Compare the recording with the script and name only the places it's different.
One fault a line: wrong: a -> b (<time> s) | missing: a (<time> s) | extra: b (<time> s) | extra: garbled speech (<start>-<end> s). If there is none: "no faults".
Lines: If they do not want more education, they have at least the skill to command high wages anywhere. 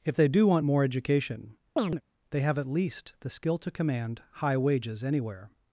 missing: not (0.5 s)